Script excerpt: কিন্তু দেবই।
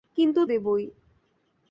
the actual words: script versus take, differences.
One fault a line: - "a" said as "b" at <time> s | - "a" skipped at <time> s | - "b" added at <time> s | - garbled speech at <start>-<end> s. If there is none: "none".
none